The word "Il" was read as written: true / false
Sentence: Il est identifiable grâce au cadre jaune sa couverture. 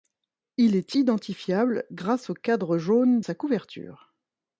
true